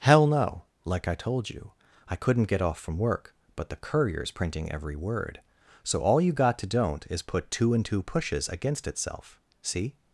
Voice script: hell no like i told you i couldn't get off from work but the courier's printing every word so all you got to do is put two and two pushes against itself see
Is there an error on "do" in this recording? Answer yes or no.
yes